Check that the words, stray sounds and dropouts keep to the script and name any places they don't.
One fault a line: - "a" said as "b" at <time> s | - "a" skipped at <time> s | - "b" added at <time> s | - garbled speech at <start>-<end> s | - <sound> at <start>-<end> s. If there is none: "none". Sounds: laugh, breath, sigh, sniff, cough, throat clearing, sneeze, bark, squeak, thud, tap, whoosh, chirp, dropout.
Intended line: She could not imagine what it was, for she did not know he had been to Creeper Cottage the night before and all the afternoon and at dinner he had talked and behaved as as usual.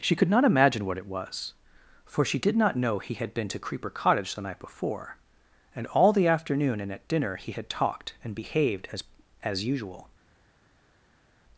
none